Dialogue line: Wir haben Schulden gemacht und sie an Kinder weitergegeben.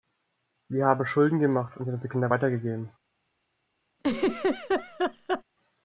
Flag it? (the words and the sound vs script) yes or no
yes